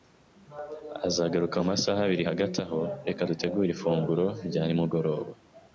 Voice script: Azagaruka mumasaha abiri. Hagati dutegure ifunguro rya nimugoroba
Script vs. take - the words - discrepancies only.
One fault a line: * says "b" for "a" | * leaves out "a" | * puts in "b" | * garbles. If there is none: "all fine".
* puts in "aho reka"